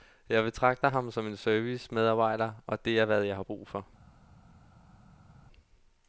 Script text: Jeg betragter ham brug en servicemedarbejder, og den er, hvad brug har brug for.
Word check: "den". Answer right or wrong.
wrong